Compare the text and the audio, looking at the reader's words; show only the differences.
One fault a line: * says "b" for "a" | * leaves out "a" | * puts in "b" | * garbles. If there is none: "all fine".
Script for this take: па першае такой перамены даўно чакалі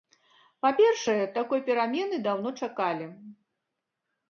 all fine